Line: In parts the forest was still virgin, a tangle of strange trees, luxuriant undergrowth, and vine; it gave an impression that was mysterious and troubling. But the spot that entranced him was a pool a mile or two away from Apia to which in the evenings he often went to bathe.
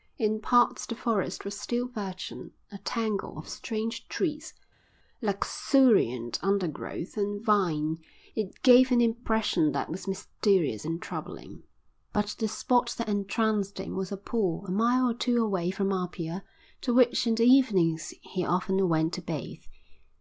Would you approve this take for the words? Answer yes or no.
yes